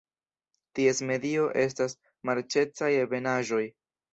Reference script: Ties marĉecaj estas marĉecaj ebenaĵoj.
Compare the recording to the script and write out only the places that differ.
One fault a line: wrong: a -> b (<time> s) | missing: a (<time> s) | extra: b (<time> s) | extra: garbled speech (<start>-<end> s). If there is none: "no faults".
wrong: marĉecaj -> medio (1.1 s)